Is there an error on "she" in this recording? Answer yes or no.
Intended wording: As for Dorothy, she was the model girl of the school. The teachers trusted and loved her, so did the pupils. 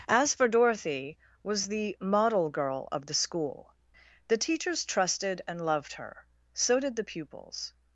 yes